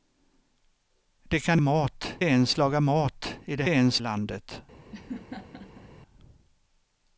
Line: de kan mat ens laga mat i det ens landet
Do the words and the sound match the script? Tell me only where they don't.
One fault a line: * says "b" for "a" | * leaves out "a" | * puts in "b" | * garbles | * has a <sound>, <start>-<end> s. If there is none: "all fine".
* has a laugh, 4.9-5.9 s